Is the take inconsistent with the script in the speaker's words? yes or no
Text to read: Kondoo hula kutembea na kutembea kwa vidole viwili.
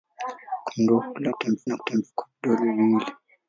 no